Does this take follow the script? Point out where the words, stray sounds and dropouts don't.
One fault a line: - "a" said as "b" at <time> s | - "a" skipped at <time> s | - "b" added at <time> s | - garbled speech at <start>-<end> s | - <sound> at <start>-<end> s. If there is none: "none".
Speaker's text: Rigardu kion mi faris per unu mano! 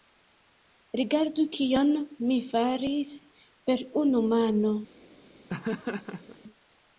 - laugh at 5.5-6.4 s